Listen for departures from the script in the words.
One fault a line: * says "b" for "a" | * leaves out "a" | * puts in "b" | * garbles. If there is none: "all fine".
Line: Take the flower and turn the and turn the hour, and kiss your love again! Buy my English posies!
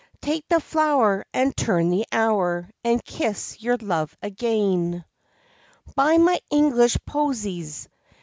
* leaves out "and turn the"